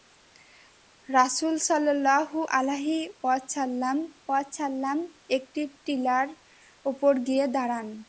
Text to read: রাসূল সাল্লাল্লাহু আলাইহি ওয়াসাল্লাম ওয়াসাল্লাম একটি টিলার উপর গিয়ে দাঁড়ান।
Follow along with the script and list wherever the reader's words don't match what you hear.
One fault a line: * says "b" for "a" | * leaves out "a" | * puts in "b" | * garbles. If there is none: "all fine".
all fine